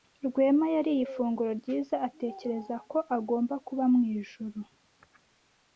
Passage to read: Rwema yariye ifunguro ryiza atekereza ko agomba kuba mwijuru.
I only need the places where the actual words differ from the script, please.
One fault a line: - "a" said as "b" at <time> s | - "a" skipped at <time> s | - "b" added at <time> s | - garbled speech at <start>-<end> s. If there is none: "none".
none